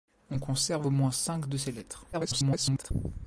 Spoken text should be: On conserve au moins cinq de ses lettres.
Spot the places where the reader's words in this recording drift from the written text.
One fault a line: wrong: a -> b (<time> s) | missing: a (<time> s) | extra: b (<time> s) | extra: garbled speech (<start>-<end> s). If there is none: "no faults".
extra: garbled speech (2.1-2.9 s)